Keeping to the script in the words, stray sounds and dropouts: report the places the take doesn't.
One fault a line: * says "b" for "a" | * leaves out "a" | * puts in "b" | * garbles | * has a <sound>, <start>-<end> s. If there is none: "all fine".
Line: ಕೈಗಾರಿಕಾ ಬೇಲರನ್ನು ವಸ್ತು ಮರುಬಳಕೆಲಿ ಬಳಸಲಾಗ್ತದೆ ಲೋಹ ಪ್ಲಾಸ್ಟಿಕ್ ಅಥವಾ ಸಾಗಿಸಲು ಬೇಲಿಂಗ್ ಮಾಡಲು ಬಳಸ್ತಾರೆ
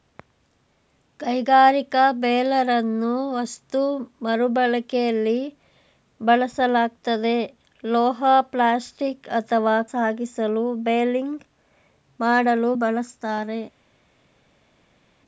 all fine